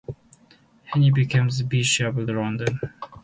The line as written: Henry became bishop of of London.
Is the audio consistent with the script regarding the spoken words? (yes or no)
no